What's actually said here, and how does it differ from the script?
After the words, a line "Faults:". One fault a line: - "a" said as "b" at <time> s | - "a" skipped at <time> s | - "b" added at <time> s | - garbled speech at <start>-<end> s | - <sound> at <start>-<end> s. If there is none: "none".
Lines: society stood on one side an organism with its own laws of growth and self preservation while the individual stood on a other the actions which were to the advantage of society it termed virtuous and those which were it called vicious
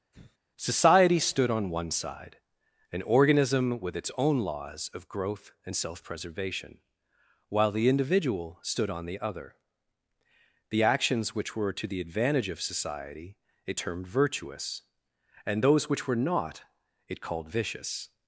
society stood on one side an organism with its own laws of growth and self preservation while the individual stood on the other the actions which were to the advantage of society it termed virtuous and those which were not it called vicious
Faults:
- sigh at 0.1-0.4 s
- "a" said as "the" at 9.0 s
- "not" added at 16.1 s